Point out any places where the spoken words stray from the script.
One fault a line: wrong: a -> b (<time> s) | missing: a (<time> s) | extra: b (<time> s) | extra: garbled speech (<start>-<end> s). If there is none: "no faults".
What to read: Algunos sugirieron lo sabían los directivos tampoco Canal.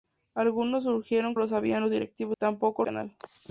no faults